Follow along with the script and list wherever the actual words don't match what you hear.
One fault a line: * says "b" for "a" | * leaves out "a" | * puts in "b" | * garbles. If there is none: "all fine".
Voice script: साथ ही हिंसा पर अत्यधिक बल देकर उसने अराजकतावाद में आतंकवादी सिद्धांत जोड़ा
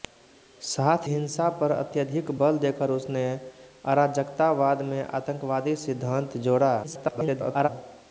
* leaves out "ही"
* garbles